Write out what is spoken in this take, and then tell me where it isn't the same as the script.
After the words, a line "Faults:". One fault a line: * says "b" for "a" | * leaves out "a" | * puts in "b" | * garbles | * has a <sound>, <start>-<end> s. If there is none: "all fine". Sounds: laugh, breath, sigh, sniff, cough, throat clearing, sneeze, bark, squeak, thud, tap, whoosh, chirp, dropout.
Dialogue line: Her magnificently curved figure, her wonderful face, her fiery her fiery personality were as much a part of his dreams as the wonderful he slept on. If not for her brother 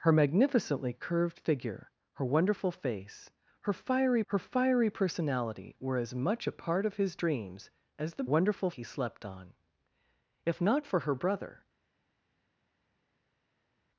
Her magnificently curved figure, her wonderful face, her fiery her fiery personality were as much a part of his dreams as the wonderful he slept on. If not for her brother
Faults:
all fine